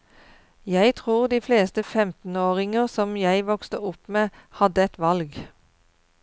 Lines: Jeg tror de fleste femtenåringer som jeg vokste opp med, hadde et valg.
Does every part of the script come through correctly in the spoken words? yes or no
yes